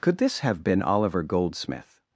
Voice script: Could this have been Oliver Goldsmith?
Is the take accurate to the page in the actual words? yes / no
yes